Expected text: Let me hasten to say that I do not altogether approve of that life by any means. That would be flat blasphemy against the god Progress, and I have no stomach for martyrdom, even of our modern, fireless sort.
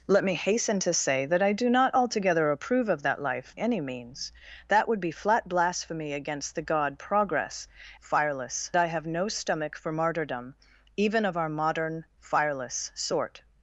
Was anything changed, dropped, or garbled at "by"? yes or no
yes